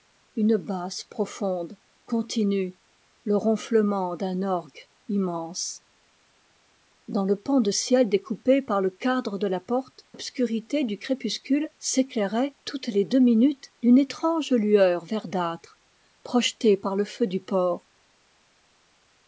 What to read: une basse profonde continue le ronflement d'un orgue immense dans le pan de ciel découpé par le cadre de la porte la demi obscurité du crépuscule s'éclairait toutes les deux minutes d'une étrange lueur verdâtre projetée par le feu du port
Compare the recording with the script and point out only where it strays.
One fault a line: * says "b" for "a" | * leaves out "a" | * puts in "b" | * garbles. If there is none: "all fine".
* leaves out "la demi"